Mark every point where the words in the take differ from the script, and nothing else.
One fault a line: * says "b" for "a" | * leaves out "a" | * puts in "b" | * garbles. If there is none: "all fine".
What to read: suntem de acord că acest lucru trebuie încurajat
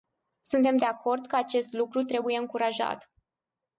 all fine